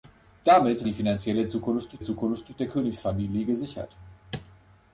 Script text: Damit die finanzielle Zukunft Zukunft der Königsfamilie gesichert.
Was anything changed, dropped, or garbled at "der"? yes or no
no